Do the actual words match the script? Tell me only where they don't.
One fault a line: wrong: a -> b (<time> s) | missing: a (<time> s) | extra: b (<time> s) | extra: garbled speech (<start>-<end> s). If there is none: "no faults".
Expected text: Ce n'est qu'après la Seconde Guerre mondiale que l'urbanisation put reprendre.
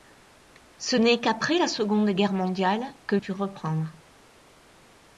missing: l'urbanisation (3.2 s)